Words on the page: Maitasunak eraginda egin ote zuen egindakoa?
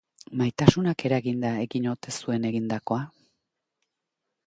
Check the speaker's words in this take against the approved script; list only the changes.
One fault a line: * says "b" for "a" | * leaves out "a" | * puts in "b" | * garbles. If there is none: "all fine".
all fine